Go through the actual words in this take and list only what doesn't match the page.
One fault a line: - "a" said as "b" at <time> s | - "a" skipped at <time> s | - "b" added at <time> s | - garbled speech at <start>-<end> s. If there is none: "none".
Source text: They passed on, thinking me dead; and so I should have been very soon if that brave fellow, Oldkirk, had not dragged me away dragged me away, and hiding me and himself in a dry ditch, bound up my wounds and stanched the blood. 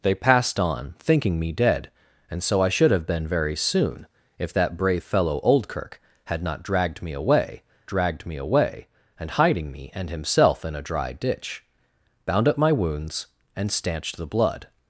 none